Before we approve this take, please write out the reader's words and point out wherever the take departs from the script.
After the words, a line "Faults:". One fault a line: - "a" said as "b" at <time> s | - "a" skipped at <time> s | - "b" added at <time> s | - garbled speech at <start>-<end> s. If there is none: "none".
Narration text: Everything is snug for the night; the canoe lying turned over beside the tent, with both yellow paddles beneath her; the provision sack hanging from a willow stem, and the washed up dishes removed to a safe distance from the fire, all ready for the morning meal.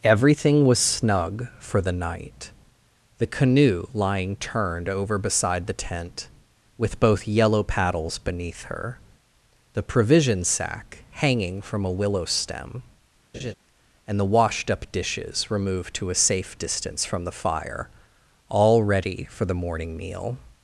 Everything was snug for the night; the canoe lying turned over beside the tent, with both yellow paddles beneath her; the provision sack hanging from a willow stem, and the washed up dishes removed to a safe distance from the fire, all ready for the morning meal.
Faults:
- "is" said as "was" at 0.7 s